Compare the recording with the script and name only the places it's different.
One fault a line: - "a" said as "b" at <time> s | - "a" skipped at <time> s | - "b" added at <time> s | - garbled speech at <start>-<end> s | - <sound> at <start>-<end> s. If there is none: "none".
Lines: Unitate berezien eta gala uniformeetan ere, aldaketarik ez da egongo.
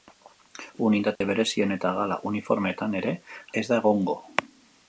- dropout at 1.2-1.2 s
- "aldaketarik" skipped at 3.1 s